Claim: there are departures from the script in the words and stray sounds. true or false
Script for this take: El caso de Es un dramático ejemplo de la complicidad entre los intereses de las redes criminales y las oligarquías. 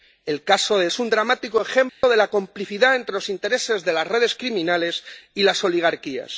true